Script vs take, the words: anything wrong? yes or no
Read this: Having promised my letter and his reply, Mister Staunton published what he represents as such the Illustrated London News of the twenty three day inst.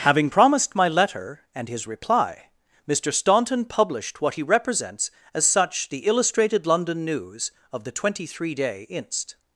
no